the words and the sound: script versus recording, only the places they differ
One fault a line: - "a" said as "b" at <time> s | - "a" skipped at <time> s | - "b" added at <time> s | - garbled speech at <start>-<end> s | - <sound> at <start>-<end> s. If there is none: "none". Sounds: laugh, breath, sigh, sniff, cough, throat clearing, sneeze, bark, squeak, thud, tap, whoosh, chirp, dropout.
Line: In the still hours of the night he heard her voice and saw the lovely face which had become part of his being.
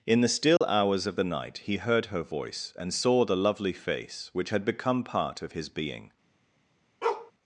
- dropout at 0.6-0.6 s
- bark at 7.0-7.3 s